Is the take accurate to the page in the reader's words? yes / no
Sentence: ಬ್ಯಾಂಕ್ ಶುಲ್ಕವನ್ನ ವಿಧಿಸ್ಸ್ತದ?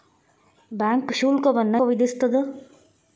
yes